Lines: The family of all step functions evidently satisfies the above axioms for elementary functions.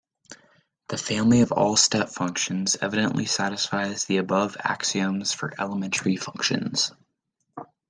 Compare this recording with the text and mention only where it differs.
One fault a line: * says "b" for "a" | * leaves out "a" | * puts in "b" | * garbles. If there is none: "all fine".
all fine